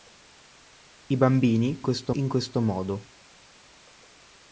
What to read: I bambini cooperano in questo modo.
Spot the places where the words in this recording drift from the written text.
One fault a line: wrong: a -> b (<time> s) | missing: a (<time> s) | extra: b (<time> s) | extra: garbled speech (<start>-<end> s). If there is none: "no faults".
wrong: cooperano -> questo (1.8 s)